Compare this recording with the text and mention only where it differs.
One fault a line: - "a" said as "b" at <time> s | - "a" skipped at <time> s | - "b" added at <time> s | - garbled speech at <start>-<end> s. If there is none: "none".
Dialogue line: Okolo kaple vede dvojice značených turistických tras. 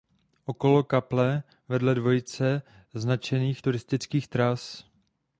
none